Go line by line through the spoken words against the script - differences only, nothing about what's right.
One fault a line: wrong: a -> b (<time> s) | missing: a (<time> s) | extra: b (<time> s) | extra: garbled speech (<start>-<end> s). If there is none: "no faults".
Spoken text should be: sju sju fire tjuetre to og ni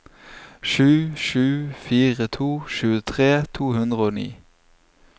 extra: to (2.3 s)
extra: hundre (3.8 s)